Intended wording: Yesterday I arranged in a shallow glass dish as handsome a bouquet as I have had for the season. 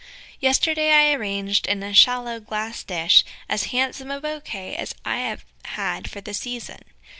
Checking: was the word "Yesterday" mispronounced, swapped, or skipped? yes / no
no